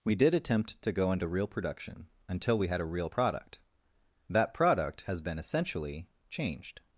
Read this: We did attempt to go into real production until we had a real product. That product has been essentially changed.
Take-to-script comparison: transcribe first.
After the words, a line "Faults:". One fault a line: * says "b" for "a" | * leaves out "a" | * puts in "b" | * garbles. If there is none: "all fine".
We did attempt to go into real production until we had a real product. That product has been essentially changed.
Faults:
all fine